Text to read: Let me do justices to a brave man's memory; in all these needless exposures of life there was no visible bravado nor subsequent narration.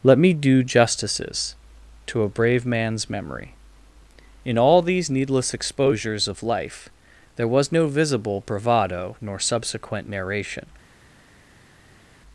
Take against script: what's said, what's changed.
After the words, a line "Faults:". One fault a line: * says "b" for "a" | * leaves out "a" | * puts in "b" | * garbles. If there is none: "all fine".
Let me do justices to a brave man's memory; in all these needless exposures of life there was no visible bravado nor subsequent narration.
Faults:
all fine